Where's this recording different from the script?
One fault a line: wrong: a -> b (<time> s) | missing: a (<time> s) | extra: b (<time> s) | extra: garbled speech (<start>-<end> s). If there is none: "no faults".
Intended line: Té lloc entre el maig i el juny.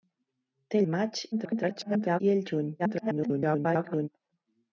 missing: lloc entre (0.8 s)
extra: garbled speech (1.3-2.2 s)
extra: garbled speech (2.8-4.1 s)